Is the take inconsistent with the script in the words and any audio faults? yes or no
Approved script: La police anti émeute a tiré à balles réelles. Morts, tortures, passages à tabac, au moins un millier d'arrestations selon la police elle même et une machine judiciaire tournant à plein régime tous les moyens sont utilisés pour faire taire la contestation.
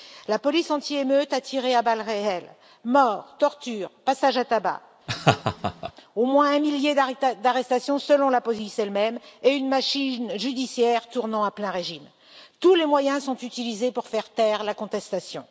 yes